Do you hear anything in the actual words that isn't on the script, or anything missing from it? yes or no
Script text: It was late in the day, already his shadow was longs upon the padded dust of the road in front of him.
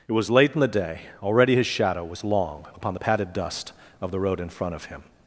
yes